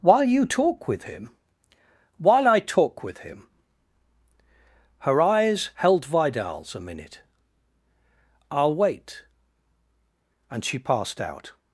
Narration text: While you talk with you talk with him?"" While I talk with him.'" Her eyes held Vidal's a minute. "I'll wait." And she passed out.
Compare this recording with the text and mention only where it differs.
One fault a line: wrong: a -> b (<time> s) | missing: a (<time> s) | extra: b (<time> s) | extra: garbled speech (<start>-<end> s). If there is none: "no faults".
missing: you talk with (1.0 s)